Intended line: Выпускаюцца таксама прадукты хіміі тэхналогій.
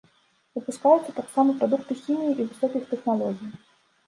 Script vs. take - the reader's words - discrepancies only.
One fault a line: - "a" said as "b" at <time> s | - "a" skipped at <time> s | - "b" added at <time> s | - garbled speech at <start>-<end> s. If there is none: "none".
- "і высокіх" added at 2.4 s